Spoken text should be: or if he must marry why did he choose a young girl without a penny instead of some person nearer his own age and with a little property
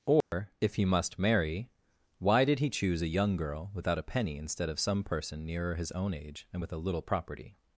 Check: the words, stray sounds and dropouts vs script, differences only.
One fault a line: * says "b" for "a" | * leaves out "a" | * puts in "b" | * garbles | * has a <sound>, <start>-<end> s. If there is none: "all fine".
* has a dropout, 0.2-0.3 s